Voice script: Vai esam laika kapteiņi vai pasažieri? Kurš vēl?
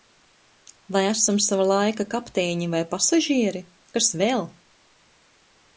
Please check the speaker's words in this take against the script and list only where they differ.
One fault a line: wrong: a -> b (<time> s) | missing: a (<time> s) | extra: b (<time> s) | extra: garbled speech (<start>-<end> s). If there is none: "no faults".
extra: sava (1.5 s)
wrong: Kurš -> Kas (4.0 s)